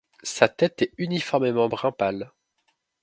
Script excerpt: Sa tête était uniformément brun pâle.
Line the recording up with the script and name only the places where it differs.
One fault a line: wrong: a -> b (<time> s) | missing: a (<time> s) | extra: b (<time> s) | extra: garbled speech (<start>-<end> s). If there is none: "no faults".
wrong: était -> est (0.8 s)